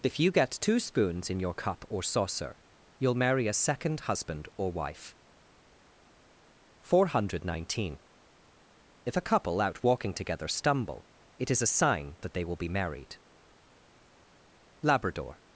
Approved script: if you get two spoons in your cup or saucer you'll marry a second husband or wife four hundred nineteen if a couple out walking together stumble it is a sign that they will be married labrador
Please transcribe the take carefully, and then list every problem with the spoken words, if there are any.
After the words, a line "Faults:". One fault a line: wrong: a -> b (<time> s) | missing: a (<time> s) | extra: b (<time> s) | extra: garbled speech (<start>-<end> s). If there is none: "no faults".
if you get two spoons in your cup or saucer you'll marry a second husband or wife four hundred nineteen if a couple out walking together stumble it is a sign that they will be married labrador
Faults:
no faults